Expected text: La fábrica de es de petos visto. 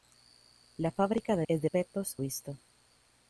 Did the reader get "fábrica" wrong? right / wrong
right